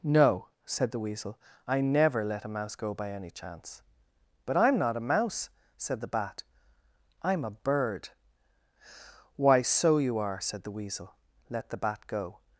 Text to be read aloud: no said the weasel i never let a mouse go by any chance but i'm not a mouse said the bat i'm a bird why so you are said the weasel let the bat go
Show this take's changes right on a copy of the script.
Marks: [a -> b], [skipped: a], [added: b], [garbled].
no said the weasel i never let a mouse go by any chance but i'm not a mouse said the bat i'm a bird why so you are said the weasel let the bat go